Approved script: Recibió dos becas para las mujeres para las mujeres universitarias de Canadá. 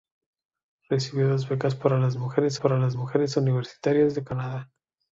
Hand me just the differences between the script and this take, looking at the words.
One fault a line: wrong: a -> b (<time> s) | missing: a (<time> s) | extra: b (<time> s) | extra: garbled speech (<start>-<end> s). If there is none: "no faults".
no faults